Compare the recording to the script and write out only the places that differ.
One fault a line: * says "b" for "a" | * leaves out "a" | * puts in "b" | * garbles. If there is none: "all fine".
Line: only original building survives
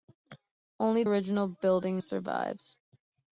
all fine